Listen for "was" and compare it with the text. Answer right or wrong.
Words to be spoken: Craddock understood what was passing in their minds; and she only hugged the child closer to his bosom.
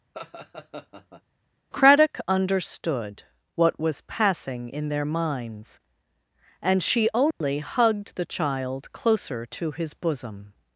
right